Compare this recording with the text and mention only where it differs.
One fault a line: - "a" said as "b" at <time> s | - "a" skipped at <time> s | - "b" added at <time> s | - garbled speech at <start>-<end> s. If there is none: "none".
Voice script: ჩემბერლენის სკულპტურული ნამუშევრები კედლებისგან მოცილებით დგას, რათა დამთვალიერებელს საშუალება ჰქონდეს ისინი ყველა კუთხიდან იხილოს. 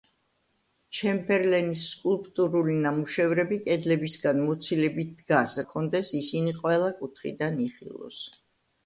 - "რათა დამთვალიერებელს საშუალება" skipped at 5.5 s